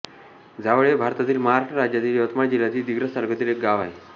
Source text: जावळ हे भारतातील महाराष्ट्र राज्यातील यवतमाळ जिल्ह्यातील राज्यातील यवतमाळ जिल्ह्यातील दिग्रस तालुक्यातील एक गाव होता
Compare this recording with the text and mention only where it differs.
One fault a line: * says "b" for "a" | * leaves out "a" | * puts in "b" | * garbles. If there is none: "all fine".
* leaves out "राज्यातील यवतमाळ जिल्ह्यातील"
* says "आहे" for "होता"